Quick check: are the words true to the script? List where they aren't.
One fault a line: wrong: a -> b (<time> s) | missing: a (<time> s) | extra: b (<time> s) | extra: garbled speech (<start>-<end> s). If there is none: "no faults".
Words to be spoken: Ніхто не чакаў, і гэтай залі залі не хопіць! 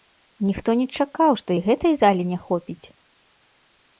extra: што (1.4 s)
missing: залі (2.2 s)